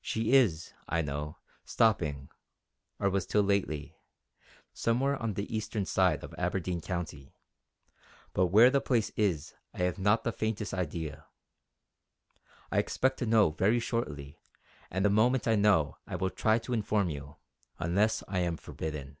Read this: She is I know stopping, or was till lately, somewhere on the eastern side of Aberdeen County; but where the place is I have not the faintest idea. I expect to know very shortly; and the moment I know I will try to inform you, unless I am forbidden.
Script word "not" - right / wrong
right